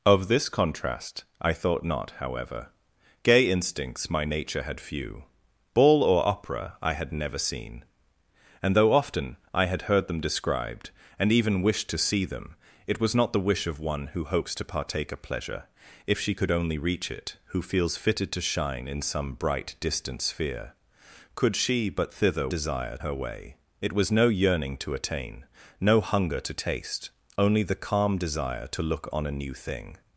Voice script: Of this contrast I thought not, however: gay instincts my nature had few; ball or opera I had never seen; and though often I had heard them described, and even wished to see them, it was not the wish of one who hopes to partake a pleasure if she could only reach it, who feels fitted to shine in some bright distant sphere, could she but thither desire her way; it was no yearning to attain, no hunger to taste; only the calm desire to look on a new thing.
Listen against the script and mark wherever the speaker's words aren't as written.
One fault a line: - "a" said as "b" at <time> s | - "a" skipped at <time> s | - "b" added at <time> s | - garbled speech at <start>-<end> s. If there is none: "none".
none